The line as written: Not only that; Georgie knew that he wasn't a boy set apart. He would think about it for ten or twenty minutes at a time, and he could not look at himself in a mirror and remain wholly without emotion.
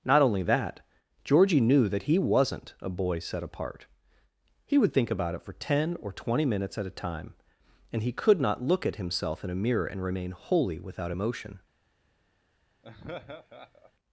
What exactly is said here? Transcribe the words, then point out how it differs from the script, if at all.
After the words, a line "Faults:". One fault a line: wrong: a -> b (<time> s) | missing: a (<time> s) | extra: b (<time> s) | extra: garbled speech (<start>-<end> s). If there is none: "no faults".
Not only that; Georgie knew that he wasn't a boy set apart. He would think about it for ten or twenty minutes at a time, and he could not look at himself in a mirror and remain wholly without emotion.
Faults:
no faults